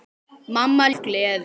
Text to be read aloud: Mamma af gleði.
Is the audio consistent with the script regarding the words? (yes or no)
yes